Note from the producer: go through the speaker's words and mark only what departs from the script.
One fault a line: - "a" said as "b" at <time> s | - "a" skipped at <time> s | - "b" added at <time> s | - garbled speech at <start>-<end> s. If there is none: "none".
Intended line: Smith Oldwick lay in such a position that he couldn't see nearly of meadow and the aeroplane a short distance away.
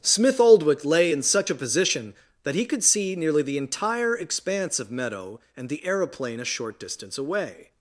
- "couldn't" said as "could" at 2.7 s
- "the entire expanse" added at 3.4 s